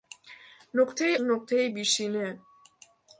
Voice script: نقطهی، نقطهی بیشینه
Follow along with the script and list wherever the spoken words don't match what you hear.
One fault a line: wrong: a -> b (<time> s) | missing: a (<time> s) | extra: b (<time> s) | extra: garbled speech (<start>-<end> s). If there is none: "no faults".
no faults